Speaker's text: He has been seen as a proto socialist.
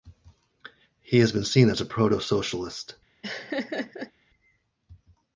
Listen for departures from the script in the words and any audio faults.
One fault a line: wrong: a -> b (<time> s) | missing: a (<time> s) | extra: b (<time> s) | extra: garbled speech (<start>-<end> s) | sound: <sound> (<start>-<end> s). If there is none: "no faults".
sound: laugh (3.2-4.1 s)